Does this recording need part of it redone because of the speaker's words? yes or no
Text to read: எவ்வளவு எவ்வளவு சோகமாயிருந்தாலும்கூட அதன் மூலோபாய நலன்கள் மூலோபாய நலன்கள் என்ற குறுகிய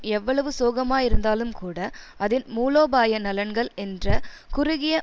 yes